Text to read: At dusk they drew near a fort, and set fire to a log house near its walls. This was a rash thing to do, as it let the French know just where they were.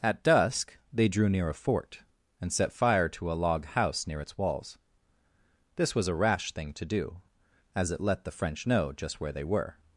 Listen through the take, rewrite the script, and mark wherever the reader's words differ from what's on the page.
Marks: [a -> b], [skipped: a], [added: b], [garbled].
At dusk they drew near a fort, and set fire to a log house near its walls. This was a rash thing to do, as it let the French know just where they were.